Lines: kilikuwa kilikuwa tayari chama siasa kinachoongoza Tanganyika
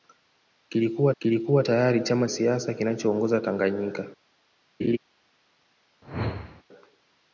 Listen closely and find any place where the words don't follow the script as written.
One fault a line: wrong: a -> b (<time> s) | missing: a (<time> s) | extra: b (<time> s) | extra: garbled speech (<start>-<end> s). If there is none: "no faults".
no faults